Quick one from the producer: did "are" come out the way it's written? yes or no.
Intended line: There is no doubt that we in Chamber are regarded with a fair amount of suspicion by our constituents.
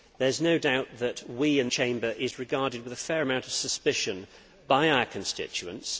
yes